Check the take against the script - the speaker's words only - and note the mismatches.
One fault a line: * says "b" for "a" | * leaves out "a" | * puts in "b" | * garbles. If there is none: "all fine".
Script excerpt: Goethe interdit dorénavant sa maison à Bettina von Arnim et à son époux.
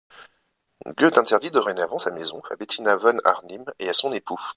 all fine